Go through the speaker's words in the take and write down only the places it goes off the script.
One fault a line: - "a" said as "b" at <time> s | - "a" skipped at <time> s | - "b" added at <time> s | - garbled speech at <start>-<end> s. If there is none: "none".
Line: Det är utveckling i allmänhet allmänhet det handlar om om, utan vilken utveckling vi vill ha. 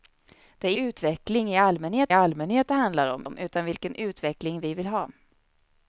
none